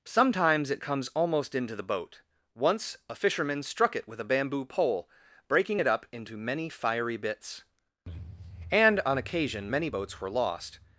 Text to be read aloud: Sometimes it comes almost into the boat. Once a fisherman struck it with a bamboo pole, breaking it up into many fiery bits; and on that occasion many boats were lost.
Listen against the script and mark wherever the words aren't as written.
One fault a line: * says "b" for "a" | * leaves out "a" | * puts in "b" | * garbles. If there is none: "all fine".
* leaves out "that"